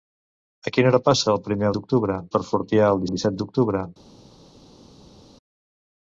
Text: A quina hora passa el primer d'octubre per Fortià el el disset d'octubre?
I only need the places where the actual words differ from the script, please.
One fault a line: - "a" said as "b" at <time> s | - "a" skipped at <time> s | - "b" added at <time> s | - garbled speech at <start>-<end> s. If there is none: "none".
none